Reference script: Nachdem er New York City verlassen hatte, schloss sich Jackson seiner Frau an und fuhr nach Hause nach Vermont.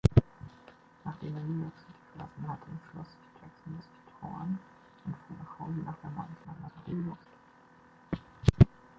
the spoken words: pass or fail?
fail